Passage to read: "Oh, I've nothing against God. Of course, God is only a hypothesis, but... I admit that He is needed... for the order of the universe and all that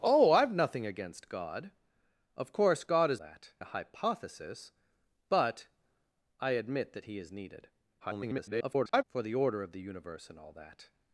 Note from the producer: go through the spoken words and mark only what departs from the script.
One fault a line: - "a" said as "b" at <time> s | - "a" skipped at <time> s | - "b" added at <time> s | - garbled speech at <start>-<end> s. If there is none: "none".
- "only" said as "that" at 3.2 s
- garbled speech at 8.0-9.0 s